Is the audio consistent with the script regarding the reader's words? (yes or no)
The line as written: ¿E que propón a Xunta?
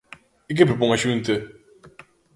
yes